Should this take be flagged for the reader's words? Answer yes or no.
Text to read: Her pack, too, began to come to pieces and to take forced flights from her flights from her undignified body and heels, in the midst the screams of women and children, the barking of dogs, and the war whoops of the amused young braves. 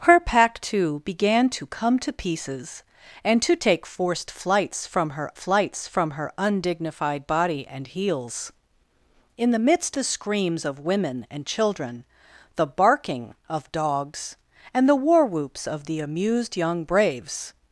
no